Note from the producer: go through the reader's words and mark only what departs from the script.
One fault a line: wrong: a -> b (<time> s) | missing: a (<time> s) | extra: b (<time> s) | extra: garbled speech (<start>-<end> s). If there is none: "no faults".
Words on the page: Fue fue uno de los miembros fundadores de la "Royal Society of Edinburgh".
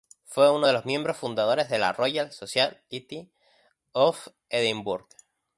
missing: fue (0.5 s)